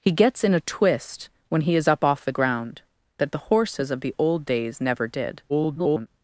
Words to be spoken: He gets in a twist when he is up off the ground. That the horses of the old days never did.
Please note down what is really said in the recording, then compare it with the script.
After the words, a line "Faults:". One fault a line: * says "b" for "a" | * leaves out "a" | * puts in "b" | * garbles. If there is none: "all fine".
He gets in a twist when he is up off the ground. That the horses of the old days never did. [garbled]
Faults:
* garbles